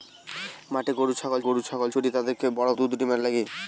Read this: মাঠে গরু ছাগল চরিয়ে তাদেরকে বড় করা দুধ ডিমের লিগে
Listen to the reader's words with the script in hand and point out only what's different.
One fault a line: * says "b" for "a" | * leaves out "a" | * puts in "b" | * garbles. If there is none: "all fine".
* puts in "গরু ছাগল"
* leaves out "করা"